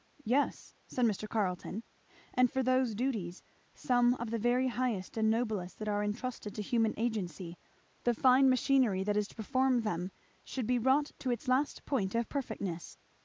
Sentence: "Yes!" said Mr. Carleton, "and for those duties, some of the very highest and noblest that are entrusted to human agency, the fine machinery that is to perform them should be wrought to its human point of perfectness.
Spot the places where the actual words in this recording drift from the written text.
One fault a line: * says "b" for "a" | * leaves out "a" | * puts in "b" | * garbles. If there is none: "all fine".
* says "last" for "human"